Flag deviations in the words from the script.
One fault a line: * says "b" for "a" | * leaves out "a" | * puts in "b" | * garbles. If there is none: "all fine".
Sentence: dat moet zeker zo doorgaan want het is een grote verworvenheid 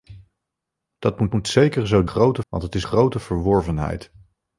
* puts in "moet"
* says "grote" for "doorgaan"
* leaves out "een"